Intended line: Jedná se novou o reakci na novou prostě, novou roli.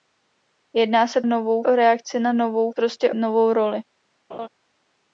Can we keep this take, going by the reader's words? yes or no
yes